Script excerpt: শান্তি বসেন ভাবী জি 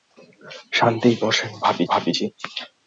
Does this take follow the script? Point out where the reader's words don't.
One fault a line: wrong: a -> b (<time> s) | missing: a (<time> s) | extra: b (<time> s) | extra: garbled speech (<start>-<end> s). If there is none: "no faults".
extra: ভাবী (1.9 s)